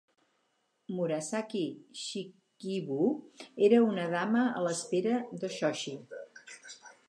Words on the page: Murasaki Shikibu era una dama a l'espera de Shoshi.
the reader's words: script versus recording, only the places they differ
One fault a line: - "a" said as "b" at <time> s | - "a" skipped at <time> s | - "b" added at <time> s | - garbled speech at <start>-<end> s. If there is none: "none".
none